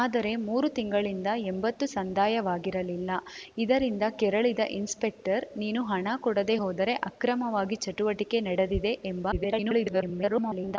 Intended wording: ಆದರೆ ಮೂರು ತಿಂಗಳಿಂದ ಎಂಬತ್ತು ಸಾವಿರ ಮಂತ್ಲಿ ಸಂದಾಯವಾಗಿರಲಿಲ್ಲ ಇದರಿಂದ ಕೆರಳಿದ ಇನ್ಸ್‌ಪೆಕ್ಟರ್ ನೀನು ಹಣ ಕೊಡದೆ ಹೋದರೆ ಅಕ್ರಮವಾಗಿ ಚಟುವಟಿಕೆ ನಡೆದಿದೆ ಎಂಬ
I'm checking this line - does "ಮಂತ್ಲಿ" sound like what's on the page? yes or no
no